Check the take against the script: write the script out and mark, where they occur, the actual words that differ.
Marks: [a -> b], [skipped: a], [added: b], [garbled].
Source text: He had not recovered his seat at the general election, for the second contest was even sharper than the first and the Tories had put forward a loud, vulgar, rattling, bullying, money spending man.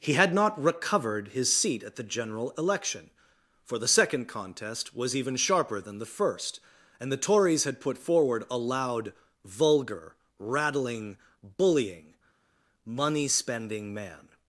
He had not recovered his seat at the general election, for the second contest was even sharper than the first and the Tories had put forward a loud, vulgar, rattling, bullying, money spending man.